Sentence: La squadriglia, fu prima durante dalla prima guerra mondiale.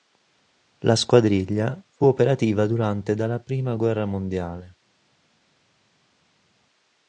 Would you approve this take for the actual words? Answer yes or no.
no